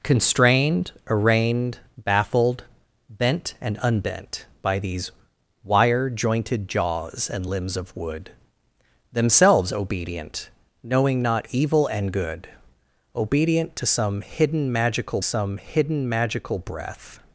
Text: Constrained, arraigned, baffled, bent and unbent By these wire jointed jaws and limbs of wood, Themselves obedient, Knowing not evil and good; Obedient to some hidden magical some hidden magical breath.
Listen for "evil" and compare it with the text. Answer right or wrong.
right